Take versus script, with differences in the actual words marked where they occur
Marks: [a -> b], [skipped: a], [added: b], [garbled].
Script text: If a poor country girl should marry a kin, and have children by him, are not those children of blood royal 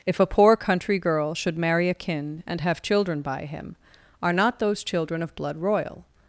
If a poor country girl should marry a kin, and have children by him, are not those children of blood royal